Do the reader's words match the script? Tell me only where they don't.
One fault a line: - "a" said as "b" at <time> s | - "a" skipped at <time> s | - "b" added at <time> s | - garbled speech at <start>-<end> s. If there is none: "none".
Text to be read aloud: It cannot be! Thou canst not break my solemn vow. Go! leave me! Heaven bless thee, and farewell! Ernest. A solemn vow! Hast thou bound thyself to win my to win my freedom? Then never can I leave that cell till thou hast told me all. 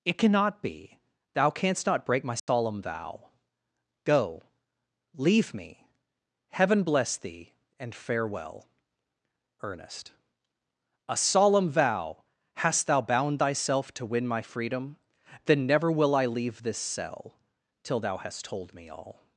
- "to win my" skipped at 14.4 s
- "can" said as "will" at 15.9 s
- "that" said as "this" at 16.6 s